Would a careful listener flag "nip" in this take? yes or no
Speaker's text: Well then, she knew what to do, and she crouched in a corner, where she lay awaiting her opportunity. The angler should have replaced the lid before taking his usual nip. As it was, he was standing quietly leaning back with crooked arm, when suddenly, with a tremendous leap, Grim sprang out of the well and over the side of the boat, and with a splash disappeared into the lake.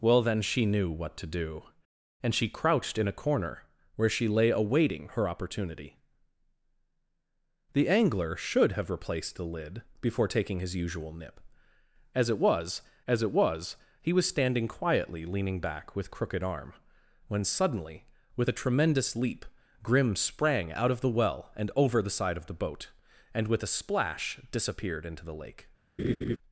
no